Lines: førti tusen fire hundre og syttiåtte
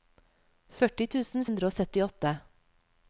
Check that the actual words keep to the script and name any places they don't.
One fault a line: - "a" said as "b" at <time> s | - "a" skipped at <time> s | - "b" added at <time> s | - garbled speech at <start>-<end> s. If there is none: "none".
- "fire" skipped at 1.4 s